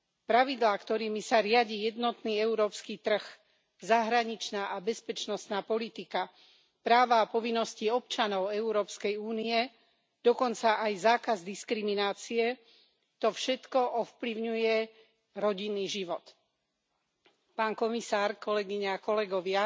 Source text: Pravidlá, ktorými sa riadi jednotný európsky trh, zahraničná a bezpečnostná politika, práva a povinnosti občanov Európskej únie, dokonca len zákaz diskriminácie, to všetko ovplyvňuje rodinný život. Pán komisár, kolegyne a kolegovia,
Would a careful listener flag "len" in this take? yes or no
yes